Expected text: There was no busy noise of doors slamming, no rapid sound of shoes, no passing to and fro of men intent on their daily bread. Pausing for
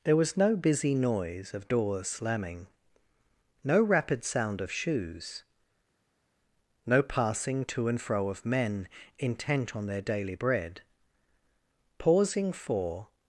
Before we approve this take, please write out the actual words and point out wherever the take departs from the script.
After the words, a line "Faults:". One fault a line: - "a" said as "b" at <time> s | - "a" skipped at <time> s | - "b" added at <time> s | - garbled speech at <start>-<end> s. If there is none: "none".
There was no busy noise of doors slamming, no rapid sound of shoes, no passing to and fro of men intent on their daily bread. Pausing for
Faults:
none